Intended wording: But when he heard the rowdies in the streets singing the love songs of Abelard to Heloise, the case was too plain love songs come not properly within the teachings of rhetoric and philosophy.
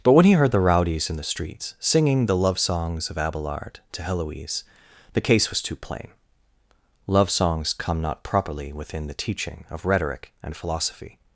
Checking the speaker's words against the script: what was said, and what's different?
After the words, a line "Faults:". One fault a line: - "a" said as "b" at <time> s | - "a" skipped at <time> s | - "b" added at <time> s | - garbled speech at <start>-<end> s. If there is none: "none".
But when he heard the rowdies in the streets singing the love songs of Abelard to Heloise, the case was too plain love songs come not properly within the teaching of rhetoric and philosophy.
Faults:
- "teachings" said as "teaching" at 9.1 s